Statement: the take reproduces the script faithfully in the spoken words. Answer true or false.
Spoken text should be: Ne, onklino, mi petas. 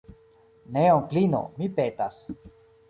true